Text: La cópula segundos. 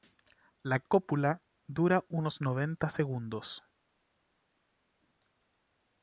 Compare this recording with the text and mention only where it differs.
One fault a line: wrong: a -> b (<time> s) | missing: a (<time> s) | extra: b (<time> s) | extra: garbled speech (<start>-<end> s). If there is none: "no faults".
extra: dura unos noventa (1.7 s)